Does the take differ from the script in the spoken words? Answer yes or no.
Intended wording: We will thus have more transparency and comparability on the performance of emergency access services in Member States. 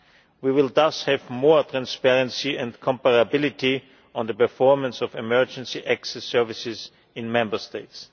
no